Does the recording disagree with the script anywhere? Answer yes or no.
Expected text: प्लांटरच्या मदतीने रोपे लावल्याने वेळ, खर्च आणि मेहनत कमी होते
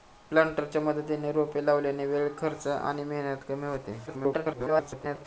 yes